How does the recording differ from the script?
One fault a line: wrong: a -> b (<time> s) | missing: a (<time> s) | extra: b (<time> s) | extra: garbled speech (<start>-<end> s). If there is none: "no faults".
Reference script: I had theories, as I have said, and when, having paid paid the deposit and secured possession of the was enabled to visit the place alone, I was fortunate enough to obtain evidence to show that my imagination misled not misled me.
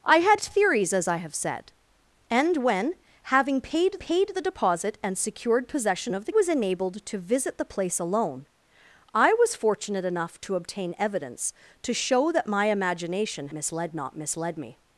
no faults